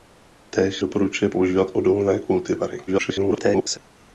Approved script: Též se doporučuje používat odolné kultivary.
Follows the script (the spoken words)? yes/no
no